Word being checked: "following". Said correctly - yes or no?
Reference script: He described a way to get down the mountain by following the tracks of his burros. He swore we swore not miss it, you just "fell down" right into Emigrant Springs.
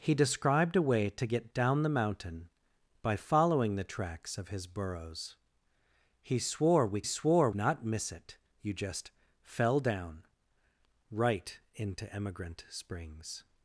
yes